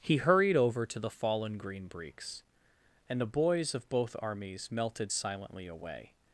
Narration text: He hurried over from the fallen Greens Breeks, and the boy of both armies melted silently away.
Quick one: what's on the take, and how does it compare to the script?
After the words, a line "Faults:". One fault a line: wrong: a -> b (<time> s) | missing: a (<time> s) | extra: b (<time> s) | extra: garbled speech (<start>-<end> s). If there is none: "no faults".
He hurried over to the fallen Green Breeks, and the boys of both armies melted silently away.
Faults:
wrong: from -> to (0.9 s)
wrong: Greens -> Green (1.6 s)
wrong: boy -> boys (3.3 s)